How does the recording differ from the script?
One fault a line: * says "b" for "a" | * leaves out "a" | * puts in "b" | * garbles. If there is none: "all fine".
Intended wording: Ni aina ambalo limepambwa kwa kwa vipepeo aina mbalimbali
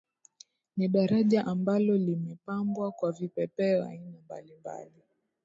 * says "daraja" for "aina"
* leaves out "kwa"